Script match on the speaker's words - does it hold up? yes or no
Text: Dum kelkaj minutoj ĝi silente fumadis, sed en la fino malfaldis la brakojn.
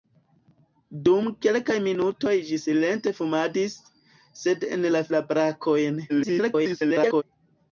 no